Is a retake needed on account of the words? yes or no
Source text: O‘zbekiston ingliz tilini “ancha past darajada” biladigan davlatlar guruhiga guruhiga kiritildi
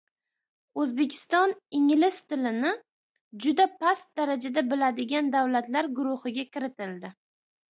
yes